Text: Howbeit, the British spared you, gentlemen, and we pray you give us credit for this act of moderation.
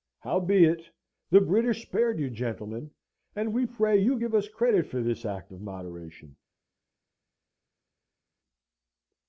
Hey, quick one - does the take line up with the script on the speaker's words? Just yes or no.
yes